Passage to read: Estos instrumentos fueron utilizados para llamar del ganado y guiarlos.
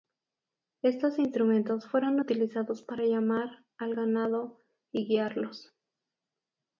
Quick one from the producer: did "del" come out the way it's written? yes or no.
no